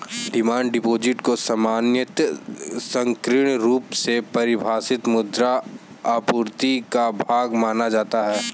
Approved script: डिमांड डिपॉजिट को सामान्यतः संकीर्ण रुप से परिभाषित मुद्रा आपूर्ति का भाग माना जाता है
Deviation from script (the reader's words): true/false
false